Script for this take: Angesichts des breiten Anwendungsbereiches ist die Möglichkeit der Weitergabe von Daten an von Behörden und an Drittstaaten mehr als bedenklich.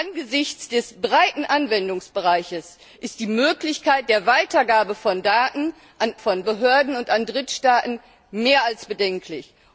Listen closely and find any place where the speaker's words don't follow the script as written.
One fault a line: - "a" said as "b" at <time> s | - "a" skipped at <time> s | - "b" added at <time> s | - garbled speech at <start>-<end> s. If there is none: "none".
none